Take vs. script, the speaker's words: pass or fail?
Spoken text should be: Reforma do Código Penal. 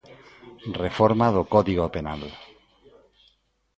pass